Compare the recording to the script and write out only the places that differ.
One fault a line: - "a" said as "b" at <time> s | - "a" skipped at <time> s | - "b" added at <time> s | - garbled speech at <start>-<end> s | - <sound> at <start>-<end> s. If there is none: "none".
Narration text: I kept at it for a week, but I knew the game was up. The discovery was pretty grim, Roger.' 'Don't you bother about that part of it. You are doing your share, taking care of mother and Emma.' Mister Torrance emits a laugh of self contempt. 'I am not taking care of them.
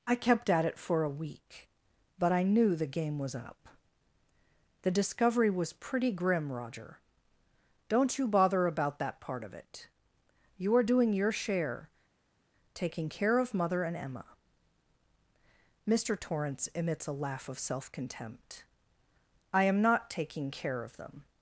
none